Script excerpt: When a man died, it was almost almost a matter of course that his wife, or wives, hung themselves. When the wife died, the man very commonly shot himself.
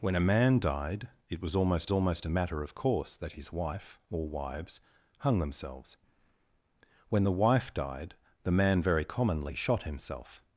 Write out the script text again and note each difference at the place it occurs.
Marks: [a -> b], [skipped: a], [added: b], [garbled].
When a man died, it was almost almost a matter of course that his wife, or wives, hung themselves. When the wife died, the man very commonly shot himself.